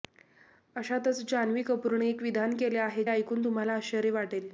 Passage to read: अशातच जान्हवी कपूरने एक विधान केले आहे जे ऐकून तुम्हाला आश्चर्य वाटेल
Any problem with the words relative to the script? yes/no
yes